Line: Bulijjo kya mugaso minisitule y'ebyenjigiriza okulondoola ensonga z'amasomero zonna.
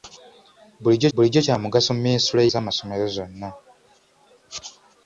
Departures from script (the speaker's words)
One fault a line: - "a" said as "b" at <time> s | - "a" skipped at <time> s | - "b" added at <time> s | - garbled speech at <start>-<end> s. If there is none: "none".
- "bulijjo" added at 1.1 s
- "y'ebyenjigiriza okulondoola ensonga" skipped at 2.4 s